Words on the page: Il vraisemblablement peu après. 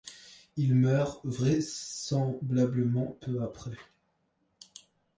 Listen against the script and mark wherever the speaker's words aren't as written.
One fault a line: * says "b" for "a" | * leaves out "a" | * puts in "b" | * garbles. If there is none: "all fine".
* puts in "meurt"